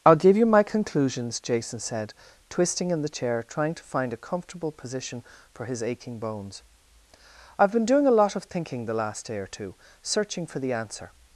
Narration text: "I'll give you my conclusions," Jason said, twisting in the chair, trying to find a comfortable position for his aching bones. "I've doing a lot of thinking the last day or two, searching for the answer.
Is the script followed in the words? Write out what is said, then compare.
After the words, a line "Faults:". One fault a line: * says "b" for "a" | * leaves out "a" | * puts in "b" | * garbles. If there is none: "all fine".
"I'll give you my conclusions," Jason said, twisting in the chair, trying to find a comfortable position for his aching bones. "I've been doing a lot of thinking the last day or two, searching for the answer.
Faults:
* puts in "been"